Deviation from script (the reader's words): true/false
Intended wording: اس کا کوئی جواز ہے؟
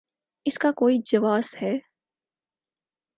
false